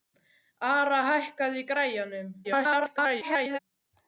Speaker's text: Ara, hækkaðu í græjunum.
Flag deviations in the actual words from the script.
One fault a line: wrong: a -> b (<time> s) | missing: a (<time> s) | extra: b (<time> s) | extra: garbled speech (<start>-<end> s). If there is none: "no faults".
extra: garbled speech (2.4-3.6 s)